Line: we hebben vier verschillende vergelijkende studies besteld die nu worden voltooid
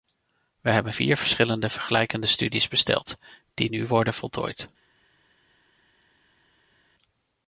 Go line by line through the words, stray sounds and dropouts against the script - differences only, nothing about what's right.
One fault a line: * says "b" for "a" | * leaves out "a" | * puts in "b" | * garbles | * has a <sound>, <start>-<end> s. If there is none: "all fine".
all fine